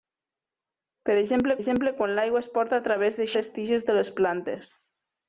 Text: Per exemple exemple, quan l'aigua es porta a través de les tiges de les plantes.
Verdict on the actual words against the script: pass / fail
pass